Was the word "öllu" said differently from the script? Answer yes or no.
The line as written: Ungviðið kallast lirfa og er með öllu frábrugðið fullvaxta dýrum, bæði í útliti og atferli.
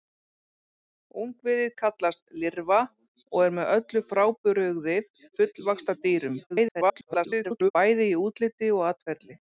no